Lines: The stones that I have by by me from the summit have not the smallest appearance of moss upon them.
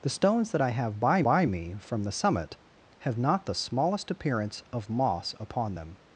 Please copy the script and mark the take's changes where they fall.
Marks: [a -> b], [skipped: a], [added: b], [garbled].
The stones that I have by by me from the summit have not the smallest appearance of moss upon them.